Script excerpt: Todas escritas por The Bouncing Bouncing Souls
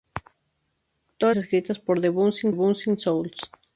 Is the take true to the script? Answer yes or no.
yes